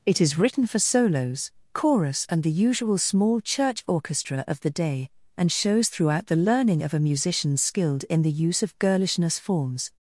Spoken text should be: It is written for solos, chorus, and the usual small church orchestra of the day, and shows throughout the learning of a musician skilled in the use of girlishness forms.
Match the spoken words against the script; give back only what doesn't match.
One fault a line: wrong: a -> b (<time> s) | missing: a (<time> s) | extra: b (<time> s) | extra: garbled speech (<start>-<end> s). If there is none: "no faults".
no faults